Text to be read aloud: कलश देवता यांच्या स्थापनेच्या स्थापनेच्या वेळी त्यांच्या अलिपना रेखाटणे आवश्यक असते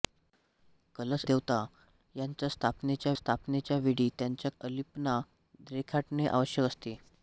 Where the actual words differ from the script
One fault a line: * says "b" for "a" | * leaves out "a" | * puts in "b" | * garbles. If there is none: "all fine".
all fine